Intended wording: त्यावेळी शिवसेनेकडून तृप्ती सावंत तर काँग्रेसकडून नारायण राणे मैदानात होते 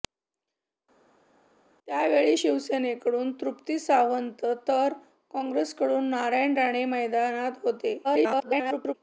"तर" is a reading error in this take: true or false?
false